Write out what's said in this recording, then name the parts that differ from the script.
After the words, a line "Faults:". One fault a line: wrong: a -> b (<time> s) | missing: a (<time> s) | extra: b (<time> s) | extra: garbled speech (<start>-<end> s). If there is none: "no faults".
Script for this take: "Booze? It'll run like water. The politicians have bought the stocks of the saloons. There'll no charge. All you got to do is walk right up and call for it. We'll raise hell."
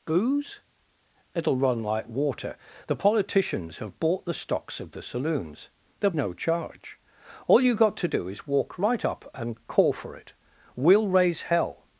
"Booze? It'll run like water. The politicians have bought the stocks of the saloons. There'll no charge. All you got to do is walk right up and call for it. We'll raise hell."
Faults:
no faults